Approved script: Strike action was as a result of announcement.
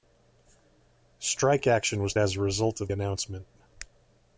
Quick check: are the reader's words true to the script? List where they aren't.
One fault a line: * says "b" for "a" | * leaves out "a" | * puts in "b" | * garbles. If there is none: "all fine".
all fine